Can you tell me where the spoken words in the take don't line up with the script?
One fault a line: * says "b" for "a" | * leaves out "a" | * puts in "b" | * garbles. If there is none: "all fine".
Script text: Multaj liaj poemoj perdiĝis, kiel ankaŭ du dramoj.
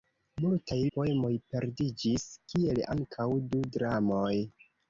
* leaves out "liaj"